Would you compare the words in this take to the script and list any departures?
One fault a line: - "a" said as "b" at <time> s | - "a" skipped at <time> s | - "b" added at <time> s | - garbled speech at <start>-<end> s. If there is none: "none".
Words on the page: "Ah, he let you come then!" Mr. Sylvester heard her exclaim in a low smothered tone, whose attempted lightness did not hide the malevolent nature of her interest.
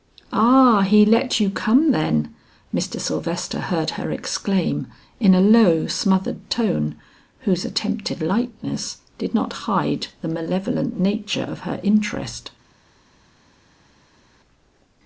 none